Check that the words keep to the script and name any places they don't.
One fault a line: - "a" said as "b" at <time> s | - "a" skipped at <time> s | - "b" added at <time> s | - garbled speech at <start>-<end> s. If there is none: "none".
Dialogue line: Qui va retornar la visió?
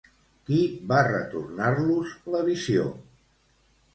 - "los" added at 1.9 s